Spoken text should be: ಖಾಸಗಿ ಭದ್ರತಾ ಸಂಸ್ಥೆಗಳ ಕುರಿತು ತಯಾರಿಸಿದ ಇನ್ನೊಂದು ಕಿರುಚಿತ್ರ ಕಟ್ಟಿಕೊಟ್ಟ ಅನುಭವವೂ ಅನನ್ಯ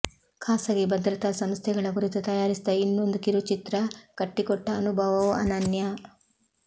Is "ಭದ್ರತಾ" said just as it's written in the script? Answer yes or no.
yes